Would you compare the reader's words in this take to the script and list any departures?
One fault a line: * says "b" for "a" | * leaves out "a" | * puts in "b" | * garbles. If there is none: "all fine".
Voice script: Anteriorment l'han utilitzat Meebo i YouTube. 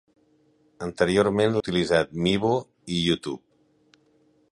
* leaves out "l'han"